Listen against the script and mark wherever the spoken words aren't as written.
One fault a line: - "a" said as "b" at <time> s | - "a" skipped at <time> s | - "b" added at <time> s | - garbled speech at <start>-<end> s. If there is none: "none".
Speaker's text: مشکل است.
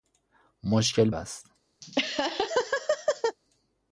none